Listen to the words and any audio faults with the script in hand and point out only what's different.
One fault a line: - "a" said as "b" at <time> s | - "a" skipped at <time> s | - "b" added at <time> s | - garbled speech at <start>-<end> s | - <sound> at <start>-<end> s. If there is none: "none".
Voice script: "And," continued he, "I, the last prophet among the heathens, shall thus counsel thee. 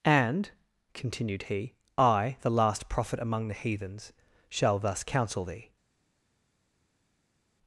none